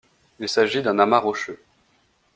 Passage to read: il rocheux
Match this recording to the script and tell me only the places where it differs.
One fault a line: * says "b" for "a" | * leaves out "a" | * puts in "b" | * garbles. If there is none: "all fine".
* puts in "s'agit d'un amas"